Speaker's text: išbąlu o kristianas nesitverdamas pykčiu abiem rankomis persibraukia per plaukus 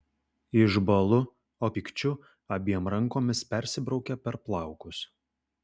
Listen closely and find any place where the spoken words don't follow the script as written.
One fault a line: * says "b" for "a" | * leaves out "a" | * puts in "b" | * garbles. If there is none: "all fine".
* leaves out "kristianas nesitverdamas"